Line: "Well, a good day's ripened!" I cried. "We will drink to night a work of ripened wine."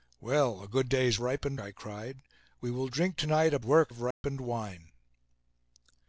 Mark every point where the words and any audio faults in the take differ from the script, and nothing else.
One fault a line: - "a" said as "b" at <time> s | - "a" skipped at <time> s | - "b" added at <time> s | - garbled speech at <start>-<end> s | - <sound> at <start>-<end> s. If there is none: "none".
- dropout at 4.1-4.2 s